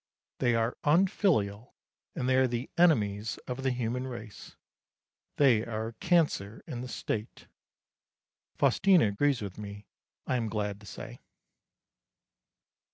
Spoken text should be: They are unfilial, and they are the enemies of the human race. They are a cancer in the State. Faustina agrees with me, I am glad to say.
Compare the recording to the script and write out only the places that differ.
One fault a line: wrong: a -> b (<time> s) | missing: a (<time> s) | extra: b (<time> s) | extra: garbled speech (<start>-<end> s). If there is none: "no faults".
no faults